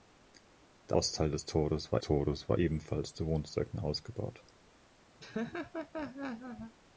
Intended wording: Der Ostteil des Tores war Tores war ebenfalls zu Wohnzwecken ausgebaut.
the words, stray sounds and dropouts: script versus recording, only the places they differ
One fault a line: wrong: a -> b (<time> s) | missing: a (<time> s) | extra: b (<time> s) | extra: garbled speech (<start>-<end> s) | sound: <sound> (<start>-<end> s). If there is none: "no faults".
sound: laugh (5.2-6.7 s)